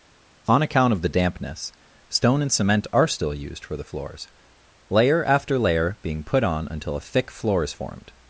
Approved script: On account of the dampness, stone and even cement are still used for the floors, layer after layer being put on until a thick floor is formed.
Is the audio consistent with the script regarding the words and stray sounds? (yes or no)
no